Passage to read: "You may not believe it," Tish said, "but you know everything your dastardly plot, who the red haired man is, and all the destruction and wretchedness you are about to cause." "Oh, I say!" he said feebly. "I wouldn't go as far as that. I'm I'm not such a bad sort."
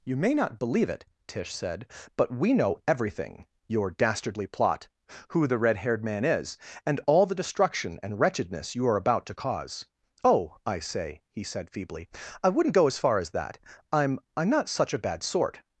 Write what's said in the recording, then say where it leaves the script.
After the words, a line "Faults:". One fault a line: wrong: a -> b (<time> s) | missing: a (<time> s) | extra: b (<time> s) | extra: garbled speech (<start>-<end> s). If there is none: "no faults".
"You may not believe it," Tish said, "but we know everything your dastardly plot, who the red haired man is, and all the destruction and wretchedness you are about to cause." "Oh, I say!" he said feebly. "I wouldn't go as far as that. I'm I'm not such a bad sort."
Faults:
wrong: you -> we (2.3 s)